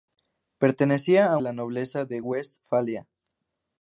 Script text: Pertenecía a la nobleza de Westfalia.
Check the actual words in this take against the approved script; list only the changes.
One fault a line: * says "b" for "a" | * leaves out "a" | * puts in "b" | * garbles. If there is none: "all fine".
all fine